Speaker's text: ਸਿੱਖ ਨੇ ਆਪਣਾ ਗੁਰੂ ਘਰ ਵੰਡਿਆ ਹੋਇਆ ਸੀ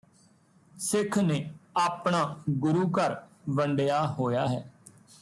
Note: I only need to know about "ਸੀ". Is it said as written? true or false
false